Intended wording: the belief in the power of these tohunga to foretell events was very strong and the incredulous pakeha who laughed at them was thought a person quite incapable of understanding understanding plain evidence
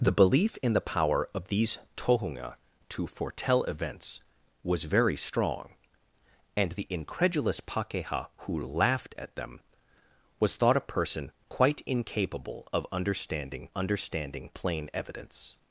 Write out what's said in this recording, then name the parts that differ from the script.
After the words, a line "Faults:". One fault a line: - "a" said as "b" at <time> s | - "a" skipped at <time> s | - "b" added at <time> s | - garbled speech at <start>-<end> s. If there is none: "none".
the belief in the power of these tohunga to foretell events was very strong and the incredulous pakeha who laughed at them was thought a person quite incapable of understanding understanding plain evidence
Faults:
none